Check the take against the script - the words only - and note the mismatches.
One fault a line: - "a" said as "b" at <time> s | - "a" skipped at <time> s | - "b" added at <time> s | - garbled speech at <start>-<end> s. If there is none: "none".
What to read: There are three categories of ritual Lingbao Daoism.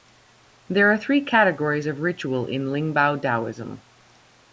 - "in" added at 2.5 s